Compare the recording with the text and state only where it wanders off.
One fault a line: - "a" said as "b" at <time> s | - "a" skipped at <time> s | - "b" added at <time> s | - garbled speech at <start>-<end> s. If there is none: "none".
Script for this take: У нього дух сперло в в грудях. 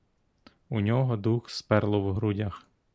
- "в" skipped at 2.1 s